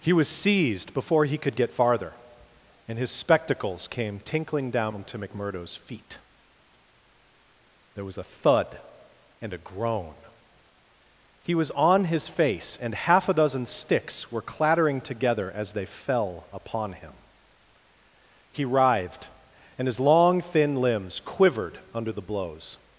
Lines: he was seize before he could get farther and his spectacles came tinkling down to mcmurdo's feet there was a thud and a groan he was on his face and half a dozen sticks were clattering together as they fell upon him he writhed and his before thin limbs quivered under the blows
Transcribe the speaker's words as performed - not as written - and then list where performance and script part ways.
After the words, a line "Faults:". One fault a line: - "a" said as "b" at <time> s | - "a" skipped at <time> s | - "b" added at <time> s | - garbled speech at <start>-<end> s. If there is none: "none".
he was seized before he could get farther and his spectacles came tinkling down to mcmurdo's feet there was a thud and a groan he was on his face and half a dozen sticks were clattering together as they fell upon him he writhed and his long thin limbs quivered under the blows
Faults:
- "seize" said as "seized" at 0.3 s
- "before" said as "long" at 20.0 s